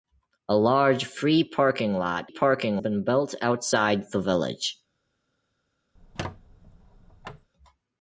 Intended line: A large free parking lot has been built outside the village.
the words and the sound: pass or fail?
fail